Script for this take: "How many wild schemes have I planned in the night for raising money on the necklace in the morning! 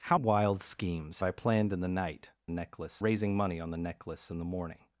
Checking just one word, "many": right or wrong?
wrong